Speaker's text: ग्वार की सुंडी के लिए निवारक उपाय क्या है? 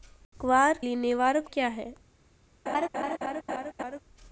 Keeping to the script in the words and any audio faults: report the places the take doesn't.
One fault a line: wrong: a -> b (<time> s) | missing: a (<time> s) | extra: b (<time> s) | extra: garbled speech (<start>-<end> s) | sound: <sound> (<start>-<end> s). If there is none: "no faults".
missing: की सुंडी के (0.8 s)
missing: उपाय (1.5 s)
sound: laugh (2.7-4.0 s)